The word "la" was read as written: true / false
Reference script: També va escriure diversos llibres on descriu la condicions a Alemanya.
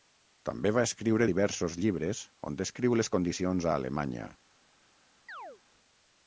false